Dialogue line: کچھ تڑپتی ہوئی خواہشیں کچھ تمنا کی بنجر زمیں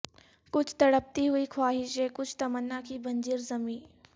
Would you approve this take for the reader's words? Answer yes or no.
yes